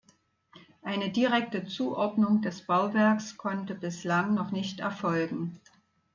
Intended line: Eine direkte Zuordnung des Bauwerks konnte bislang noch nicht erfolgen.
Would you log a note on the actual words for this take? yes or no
no